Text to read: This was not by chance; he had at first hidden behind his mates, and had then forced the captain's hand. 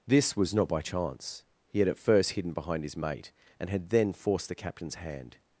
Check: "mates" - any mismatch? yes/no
yes